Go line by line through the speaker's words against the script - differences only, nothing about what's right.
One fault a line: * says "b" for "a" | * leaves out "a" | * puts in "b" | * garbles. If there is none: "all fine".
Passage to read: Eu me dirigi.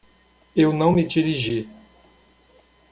* puts in "não"